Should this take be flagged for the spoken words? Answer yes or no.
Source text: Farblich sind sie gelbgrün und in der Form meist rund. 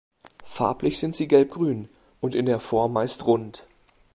no